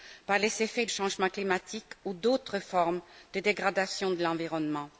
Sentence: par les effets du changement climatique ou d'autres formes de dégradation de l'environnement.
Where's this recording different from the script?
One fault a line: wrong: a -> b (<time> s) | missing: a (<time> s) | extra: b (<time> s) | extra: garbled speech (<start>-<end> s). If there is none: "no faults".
missing: du (0.8 s)